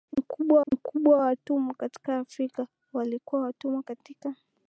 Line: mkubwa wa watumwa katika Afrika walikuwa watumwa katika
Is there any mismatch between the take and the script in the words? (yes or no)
yes